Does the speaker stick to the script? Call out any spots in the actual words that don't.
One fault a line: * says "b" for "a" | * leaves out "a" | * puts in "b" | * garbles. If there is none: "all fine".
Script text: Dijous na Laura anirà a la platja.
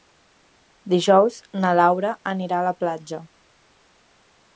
all fine